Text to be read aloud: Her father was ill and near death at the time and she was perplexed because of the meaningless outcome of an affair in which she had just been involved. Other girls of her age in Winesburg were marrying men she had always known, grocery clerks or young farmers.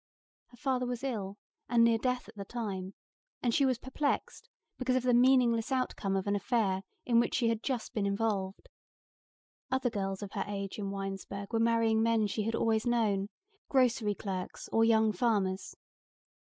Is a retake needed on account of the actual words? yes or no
no